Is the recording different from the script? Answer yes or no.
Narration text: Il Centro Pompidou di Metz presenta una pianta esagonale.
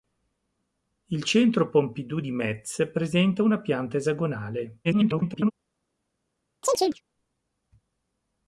yes